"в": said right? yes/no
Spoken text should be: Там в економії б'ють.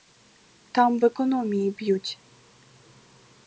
yes